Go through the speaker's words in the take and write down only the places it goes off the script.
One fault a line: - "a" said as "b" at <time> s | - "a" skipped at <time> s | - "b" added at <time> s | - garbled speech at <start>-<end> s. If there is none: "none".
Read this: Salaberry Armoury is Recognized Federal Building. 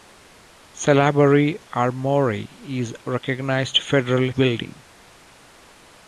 none